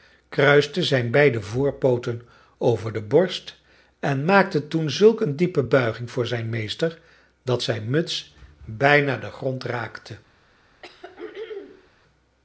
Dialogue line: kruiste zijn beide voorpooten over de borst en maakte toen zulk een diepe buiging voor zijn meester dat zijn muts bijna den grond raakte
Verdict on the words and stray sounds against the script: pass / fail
fail